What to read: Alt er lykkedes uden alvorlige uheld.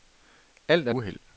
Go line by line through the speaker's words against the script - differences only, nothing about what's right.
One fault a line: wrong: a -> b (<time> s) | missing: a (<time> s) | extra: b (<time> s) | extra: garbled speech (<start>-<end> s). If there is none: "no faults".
missing: lykkedes uden alvorlige (0.9 s)